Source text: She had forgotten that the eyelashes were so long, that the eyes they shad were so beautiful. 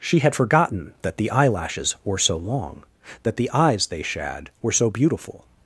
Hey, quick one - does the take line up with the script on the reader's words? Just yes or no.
yes